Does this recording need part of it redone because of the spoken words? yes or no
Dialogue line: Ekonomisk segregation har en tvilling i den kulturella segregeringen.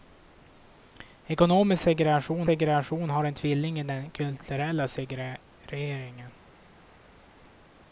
yes